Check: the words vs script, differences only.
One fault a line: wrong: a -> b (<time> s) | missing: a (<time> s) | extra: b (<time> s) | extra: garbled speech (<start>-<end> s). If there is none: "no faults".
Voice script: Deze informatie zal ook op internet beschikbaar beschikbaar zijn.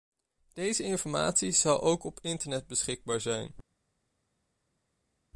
missing: beschikbaar (3.2 s)